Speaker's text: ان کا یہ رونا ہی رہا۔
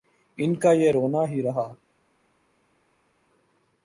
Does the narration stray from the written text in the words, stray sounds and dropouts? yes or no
no